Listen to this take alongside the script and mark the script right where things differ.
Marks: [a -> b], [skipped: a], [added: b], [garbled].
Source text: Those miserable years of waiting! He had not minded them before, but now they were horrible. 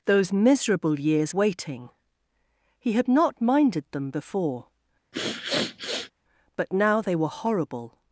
Those miserable years [skipped: of] waiting! He had not minded them before, but now they were horrible.